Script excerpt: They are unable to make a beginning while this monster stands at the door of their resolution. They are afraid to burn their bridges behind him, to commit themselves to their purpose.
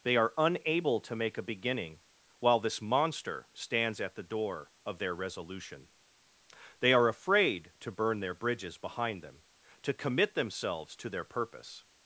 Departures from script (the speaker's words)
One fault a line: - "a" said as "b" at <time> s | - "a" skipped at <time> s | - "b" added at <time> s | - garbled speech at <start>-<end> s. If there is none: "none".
- "him" said as "them" at 9.2 s